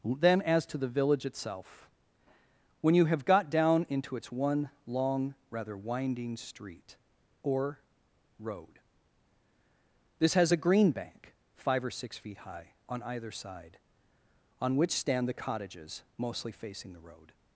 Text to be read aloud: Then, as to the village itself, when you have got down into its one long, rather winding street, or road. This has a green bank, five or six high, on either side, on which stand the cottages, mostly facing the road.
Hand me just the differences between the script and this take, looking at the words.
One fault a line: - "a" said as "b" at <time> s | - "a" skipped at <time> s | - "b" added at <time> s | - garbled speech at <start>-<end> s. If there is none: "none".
- "feet" added at 12.2 s